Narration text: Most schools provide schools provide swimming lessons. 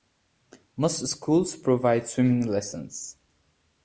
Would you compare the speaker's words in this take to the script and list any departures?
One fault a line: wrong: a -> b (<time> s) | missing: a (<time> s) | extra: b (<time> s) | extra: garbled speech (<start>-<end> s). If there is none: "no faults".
missing: schools provide (2.1 s)